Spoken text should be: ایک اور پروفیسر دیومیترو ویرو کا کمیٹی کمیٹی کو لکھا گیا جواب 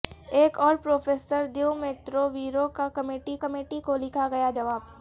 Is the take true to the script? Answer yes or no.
yes